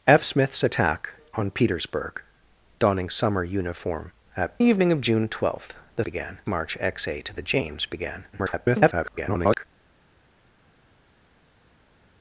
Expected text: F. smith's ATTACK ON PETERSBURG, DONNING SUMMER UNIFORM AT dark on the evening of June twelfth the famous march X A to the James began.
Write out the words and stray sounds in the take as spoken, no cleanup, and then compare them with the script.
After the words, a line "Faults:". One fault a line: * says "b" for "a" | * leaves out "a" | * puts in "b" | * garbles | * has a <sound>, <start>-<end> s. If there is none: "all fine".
F. smith's ATTACK ON PETERSBURG, DONNING SUMMER UNIFORM AT the evening of June twelfth the began march X A to the James began. [garbled]
Faults:
* leaves out "dark on"
* says "began" for "famous"
* garbles